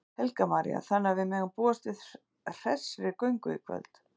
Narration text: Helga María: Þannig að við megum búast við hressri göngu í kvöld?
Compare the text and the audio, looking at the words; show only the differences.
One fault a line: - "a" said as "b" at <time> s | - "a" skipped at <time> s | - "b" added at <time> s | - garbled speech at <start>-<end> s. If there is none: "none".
none